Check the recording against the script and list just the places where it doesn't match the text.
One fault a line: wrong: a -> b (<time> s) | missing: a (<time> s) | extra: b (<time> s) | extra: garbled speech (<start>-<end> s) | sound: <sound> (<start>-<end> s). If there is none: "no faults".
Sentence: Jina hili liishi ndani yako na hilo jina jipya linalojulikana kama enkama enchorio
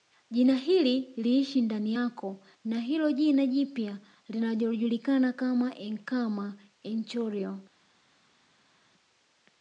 no faults